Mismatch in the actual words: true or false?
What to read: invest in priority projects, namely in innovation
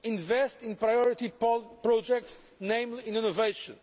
false